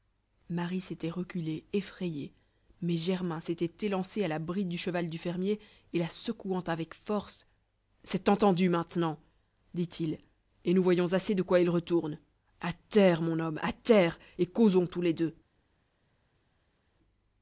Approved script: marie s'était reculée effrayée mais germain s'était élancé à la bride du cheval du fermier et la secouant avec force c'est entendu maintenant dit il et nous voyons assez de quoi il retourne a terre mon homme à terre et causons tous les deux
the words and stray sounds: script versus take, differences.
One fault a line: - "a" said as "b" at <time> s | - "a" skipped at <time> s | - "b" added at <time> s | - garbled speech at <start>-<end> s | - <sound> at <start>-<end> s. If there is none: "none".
none